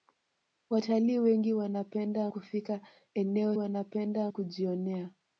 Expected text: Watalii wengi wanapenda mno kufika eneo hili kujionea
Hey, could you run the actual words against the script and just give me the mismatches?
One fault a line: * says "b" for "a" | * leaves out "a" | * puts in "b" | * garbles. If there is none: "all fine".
* leaves out "mno"
* says "wanapenda" for "hili"